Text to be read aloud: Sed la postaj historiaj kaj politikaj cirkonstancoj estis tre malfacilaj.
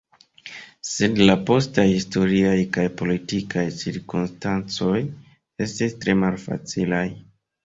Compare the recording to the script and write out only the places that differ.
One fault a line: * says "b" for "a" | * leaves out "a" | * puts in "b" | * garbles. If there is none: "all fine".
all fine